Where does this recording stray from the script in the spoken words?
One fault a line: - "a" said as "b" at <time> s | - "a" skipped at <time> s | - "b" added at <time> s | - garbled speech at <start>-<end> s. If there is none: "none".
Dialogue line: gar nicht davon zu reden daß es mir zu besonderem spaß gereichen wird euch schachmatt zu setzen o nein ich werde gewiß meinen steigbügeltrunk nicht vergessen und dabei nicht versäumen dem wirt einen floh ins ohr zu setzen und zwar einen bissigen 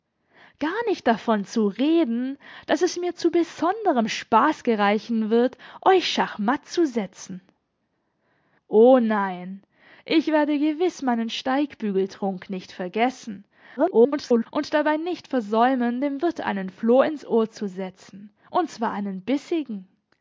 - garbled speech at 13.8-14.5 s